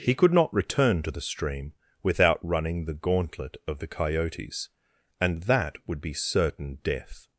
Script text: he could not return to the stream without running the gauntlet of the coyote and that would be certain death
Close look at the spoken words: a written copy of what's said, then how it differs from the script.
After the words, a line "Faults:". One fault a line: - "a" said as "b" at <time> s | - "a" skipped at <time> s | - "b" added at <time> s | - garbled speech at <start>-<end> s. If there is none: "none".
he could not return to the stream without running the gauntlet of the coyotes and that would be certain death
Faults:
- "coyote" said as "coyotes" at 3.9 s